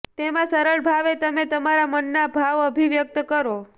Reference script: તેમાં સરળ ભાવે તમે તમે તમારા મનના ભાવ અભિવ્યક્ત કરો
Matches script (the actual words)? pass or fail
fail